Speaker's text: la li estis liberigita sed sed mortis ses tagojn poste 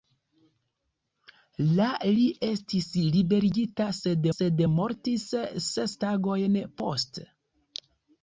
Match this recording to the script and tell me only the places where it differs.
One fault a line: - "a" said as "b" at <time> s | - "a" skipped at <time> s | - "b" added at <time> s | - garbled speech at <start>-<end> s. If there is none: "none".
none